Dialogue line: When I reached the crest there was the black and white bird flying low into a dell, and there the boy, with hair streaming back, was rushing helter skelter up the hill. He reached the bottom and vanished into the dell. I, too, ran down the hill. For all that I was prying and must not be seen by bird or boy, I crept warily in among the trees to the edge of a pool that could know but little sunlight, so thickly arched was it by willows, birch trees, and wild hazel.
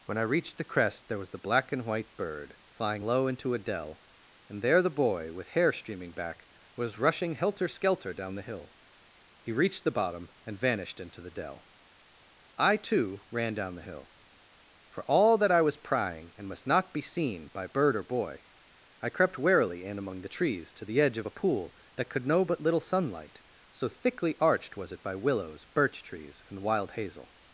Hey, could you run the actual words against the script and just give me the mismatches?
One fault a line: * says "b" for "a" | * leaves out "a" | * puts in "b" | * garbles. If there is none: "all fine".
* says "down" for "up"